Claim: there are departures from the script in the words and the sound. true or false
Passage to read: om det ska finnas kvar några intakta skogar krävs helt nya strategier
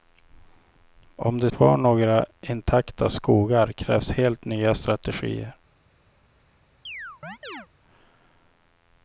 true